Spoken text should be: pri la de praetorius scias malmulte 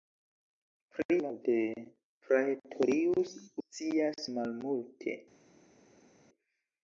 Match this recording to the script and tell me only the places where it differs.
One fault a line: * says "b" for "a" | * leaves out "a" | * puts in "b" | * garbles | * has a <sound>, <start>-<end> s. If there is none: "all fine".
all fine